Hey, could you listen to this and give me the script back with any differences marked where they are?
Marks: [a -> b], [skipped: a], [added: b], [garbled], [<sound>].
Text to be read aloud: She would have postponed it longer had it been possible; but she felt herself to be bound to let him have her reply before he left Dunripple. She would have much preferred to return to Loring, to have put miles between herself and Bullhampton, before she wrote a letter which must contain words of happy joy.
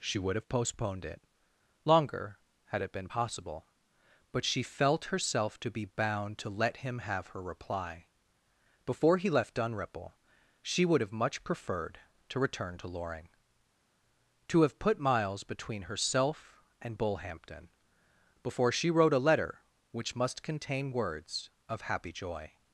She would have postponed it longer had it been possible; but she felt herself to be bound to let him have her reply before he left Dunripple. She would have much preferred to return to Loring, to have put miles between herself and Bullhampton, before she wrote a letter which must contain words of happy joy.